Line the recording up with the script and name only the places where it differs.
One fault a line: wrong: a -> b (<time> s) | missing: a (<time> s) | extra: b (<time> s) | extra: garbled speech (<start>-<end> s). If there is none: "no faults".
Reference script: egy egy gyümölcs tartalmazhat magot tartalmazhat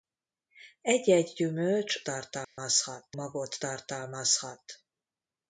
no faults